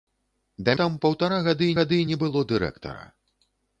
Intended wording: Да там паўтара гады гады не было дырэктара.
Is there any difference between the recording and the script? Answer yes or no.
no